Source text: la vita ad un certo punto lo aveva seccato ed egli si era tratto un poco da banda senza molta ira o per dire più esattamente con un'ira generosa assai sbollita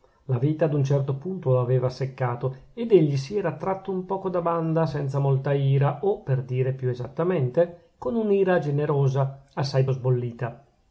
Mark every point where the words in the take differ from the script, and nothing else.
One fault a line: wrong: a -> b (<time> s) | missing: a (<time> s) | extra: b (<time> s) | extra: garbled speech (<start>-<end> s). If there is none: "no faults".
no faults